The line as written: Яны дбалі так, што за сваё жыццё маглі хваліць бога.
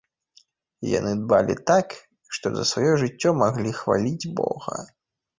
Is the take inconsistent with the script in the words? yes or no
no